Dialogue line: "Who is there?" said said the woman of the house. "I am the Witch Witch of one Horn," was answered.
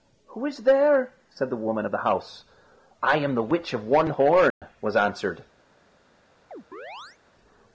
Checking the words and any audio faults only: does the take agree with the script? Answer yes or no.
no